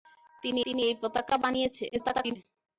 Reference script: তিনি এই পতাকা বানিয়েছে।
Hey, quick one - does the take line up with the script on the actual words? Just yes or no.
no